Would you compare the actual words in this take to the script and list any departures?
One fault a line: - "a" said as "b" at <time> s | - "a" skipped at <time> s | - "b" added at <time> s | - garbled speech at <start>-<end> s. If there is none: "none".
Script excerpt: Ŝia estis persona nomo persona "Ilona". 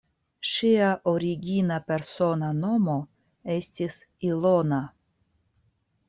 - "estis" said as "origina" at 1.1 s
- "persona" said as "estis" at 3.6 s